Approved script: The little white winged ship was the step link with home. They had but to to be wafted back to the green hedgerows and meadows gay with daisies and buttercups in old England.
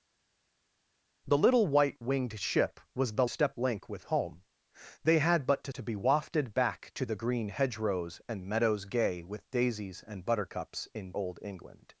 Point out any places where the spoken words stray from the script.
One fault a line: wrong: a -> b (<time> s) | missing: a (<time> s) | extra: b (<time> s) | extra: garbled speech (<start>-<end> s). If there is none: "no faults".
no faults